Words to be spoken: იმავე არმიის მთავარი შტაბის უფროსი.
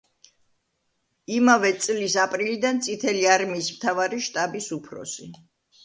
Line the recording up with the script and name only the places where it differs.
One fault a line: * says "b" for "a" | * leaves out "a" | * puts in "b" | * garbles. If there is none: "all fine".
* puts in "წლის აპრილიდან წითელი"